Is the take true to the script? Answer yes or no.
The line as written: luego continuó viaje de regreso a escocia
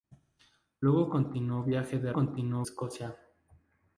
no